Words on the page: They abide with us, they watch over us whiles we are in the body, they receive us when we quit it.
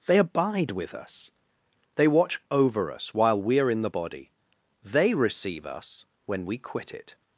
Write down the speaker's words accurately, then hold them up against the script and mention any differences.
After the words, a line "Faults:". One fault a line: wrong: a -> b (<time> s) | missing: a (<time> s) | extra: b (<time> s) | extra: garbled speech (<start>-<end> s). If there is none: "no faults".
They abide with us, they watch over us while we are in the body, they receive us when we quit it.
Faults:
wrong: whiles -> while (3.1 s)